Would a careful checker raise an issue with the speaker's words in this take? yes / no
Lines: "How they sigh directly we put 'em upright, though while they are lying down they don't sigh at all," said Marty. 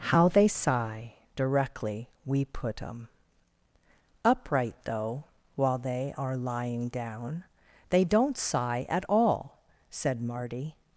no